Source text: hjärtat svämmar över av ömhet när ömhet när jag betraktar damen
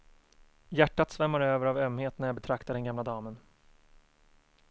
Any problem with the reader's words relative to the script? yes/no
yes